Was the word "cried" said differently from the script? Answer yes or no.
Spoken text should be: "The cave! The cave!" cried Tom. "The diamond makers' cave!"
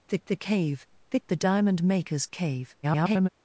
yes